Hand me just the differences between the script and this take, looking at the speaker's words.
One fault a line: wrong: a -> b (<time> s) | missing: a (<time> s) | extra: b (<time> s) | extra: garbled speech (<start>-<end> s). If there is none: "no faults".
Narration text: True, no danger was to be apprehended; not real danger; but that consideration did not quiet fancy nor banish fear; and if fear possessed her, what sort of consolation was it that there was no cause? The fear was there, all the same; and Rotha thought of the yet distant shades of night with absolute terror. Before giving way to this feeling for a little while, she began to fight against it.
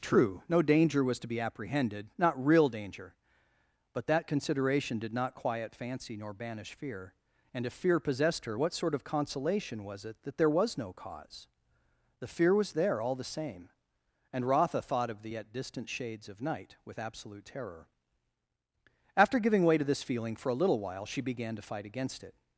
wrong: Before -> After (19.2 s)